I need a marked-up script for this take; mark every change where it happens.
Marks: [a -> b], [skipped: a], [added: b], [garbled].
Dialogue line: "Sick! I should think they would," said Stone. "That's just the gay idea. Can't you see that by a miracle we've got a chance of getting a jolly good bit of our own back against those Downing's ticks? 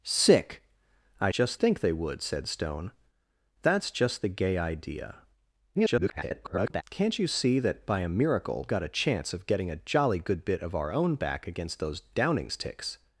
"Sick! I [should -> just] think they would," said Stone. "That's just the gay idea. [garbled] Can't you see that by a miracle [skipped: we've] got a chance of getting a jolly good bit of our own back against those Downing's ticks?